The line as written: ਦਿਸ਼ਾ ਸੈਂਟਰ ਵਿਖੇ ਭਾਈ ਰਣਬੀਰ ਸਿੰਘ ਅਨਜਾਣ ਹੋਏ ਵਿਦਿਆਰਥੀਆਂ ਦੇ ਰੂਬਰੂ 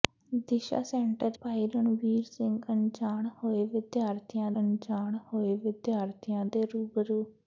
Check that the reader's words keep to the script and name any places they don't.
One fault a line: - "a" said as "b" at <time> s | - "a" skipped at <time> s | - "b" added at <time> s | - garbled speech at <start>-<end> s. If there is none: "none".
- "ਵਿਖੇ" skipped at 1.4 s
- "ਅਨਜਾਣ ਹੋਏ ਵਿਦਿਆਰਥੀਆਂ" added at 4.6 s